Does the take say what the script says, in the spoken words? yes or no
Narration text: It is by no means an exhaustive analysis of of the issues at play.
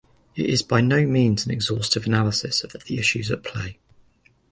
yes